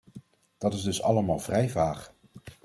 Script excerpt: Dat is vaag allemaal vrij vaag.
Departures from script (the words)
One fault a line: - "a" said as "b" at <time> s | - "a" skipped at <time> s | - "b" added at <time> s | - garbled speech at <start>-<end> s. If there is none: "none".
- "vaag" said as "dus" at 0.8 s